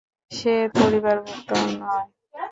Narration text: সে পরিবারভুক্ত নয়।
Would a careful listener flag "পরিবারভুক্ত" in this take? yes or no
no